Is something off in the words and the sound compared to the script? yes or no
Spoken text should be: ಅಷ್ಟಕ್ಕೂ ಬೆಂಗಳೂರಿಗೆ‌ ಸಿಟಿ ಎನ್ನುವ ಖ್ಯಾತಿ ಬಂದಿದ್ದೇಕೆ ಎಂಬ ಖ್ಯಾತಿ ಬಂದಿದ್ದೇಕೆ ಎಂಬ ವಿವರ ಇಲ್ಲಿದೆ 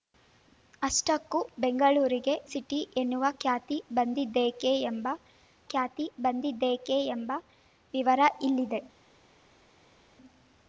no